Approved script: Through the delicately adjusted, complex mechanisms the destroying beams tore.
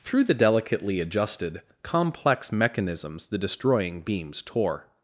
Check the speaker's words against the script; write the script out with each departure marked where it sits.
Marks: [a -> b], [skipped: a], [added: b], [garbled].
Through the delicately adjusted, complex mechanisms the destroying beams tore.